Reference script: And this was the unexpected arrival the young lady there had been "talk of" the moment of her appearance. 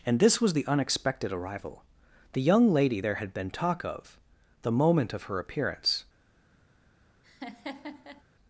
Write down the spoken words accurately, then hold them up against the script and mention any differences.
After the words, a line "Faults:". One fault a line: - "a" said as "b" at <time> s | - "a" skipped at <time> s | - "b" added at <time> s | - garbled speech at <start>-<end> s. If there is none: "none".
And this was the unexpected arrival the young lady there had been "talk of" the moment of her appearance.
Faults:
none